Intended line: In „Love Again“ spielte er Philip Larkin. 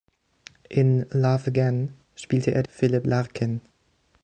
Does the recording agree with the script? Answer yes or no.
yes